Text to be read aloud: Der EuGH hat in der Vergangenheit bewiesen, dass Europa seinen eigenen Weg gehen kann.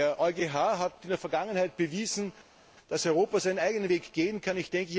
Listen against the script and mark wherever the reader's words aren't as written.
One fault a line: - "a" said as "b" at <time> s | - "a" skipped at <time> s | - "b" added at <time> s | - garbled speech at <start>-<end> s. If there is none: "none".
none